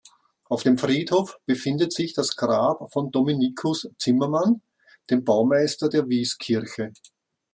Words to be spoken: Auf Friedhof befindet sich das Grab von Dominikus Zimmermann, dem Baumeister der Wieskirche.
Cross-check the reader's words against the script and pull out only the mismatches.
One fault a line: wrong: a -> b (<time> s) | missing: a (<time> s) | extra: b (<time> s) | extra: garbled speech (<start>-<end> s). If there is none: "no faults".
extra: dem (0.6 s)